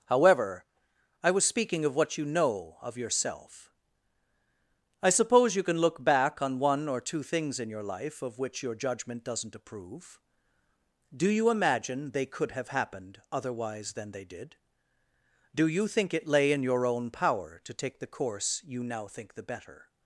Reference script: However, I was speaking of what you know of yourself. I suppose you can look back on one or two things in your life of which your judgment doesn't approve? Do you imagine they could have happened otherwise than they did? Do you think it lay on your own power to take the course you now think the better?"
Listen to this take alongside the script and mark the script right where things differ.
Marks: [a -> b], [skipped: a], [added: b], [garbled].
However, I was speaking of what you know of yourself. I suppose you can look back on one or two things in your life of which your judgment doesn't approve? Do you imagine they could have happened otherwise than they did? Do you think it lay [on -> in] your own power to take the course you now think the better?"